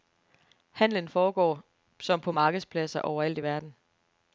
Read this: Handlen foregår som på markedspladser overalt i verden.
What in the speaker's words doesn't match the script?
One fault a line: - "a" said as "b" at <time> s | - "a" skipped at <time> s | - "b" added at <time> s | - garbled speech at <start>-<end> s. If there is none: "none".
none